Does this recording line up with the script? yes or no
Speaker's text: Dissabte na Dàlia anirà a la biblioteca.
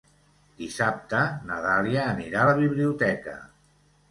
yes